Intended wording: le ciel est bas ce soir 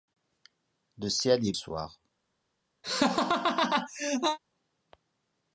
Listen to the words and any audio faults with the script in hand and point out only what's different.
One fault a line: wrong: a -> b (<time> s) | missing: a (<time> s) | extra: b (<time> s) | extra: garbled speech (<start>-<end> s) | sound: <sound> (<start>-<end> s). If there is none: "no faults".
missing: bas ce (1.5 s)
sound: laugh (2.8-4.4 s)